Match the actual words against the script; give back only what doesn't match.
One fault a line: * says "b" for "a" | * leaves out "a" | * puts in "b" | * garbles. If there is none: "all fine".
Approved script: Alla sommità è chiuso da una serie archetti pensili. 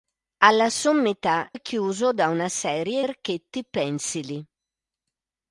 all fine